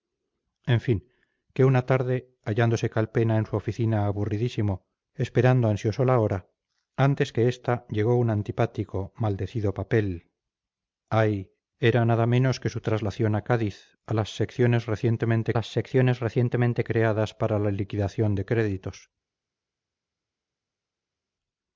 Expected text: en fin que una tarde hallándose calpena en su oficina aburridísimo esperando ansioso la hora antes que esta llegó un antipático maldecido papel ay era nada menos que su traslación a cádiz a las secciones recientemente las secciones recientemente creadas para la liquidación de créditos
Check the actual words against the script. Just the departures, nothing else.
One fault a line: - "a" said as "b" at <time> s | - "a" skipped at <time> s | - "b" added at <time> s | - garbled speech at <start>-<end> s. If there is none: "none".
none